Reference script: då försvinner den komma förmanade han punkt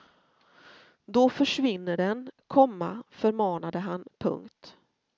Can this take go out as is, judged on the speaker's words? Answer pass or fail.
pass